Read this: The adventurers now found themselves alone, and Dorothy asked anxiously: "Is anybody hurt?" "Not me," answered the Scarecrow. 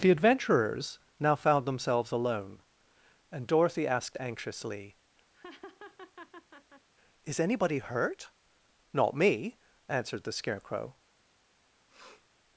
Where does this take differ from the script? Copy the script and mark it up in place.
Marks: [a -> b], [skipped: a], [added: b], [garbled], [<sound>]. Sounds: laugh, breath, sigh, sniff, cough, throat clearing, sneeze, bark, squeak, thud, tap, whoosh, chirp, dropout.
The adventurers now found themselves alone, and Dorothy asked anxiously: [laugh] "Is anybody hurt?" "Not me," answered the Scarecrow. [sniff]